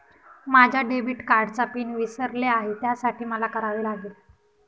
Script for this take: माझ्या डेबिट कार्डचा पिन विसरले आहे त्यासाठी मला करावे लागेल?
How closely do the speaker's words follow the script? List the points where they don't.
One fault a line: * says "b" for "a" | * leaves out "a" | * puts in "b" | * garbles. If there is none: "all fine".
all fine